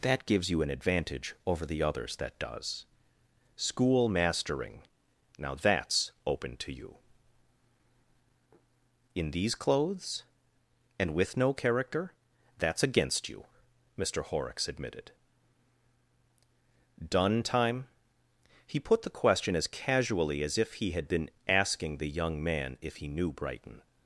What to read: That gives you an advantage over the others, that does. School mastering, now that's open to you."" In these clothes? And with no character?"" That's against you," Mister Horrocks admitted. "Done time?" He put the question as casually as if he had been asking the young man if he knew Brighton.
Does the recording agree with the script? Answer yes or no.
yes